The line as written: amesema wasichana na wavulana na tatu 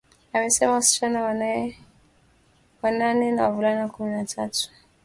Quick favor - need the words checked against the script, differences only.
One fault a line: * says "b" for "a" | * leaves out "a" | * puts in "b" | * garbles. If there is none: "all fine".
* puts in "wanane"
* puts in "kumi"